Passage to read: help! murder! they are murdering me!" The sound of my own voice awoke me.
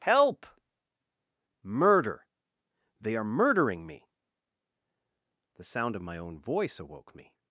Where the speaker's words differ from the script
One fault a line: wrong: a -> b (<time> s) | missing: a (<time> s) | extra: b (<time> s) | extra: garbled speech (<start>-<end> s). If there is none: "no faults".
no faults